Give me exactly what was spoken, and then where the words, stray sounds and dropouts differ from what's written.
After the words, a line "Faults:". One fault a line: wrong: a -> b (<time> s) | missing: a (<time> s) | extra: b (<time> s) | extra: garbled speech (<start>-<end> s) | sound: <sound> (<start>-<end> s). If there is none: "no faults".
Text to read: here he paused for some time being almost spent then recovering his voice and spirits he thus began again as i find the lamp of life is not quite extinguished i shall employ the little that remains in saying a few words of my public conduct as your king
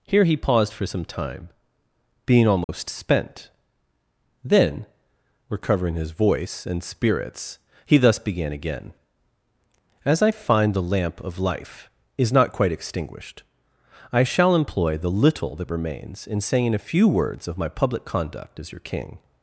here he paused for some time being almost spent then recovering his voice and spirits he thus began again as i find the lamp of life is not quite extinguished i shall employ the little that remains in saying a few words of my public conduct as your king
Faults:
sound: dropout (2.6-2.7 s)